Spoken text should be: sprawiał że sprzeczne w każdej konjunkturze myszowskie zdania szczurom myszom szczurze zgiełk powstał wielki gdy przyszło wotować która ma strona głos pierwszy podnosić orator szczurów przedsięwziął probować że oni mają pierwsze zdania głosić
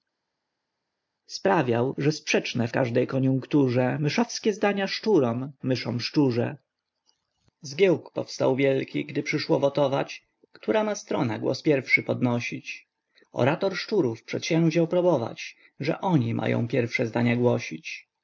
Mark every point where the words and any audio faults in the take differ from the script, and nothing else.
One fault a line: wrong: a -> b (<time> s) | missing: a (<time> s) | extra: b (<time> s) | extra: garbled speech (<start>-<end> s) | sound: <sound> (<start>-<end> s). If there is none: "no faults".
no faults